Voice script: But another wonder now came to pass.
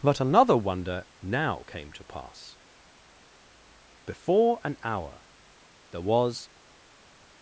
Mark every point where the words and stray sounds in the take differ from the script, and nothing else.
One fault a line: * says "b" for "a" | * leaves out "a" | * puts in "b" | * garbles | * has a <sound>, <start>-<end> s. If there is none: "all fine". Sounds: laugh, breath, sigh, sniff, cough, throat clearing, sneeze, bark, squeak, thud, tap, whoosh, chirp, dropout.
* puts in "Before an hour there was"